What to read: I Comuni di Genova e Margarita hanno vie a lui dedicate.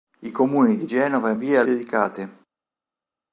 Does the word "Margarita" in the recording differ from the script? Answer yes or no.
yes